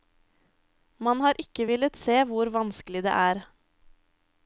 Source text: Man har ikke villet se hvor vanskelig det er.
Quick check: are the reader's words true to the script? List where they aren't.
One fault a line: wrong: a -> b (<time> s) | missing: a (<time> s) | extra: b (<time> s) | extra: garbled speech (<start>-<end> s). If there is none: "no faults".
no faults